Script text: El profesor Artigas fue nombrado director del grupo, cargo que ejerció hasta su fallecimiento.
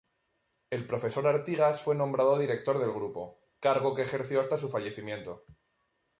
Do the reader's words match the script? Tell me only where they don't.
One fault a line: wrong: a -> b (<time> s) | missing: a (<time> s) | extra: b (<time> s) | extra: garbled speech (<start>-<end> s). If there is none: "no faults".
no faults